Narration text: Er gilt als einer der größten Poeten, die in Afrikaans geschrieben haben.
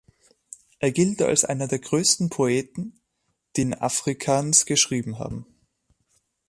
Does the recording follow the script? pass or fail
pass